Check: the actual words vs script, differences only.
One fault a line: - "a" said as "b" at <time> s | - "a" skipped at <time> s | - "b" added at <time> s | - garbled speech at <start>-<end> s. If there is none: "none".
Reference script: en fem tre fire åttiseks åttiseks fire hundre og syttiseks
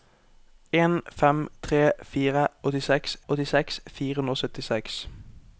none